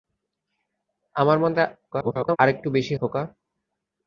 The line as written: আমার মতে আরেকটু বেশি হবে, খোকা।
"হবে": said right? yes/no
no